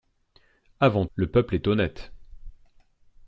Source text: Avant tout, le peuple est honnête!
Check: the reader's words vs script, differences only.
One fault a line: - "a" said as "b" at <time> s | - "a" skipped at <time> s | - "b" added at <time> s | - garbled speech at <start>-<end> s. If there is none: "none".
- "tout" skipped at 1.1 s